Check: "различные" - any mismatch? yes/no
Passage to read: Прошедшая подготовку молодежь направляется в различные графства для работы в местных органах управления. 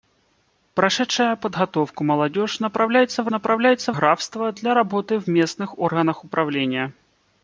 yes